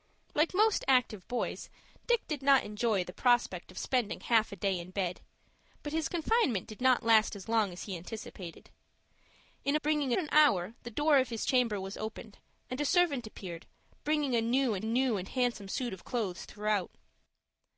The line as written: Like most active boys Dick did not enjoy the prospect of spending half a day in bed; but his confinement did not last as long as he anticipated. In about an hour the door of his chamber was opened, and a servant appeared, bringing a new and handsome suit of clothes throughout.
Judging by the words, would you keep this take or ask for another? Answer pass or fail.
fail